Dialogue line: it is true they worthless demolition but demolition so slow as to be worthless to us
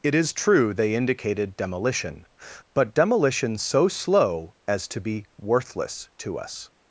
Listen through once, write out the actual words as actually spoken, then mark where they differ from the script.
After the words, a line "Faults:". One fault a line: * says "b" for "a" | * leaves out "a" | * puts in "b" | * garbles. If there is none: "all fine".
it is true they indicated demolition but demolition so slow as to be worthless to us
Faults:
* says "indicated" for "worthless"